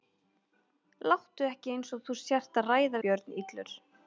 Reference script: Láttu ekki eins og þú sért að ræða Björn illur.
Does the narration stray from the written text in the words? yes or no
no